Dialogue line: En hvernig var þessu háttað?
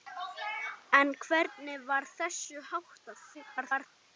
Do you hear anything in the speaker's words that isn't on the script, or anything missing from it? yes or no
yes